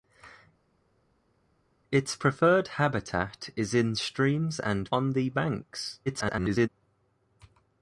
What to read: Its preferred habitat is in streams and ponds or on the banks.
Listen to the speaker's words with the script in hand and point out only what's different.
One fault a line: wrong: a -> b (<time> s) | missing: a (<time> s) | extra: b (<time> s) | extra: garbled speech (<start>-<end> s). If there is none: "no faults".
missing: ponds or (4.9 s)
extra: garbled speech (6.1-6.7 s)